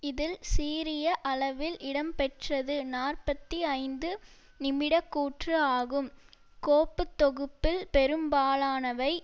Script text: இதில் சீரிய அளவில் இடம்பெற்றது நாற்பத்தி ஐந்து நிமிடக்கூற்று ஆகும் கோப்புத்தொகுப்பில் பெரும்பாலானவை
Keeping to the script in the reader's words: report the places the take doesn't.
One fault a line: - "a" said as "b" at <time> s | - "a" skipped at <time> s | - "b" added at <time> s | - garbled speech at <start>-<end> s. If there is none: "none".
none